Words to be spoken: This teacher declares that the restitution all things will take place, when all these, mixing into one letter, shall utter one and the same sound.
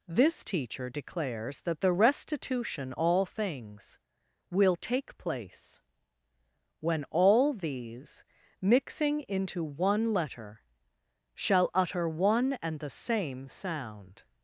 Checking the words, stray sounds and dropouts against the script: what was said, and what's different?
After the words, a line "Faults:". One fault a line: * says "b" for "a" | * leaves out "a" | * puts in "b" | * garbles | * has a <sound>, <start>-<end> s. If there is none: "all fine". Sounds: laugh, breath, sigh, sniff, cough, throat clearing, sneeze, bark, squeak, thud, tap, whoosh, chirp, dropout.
This teacher declares that the restitution all things will take place, when all these, mixing into one letter, shall utter one and the same sound.
Faults:
all fine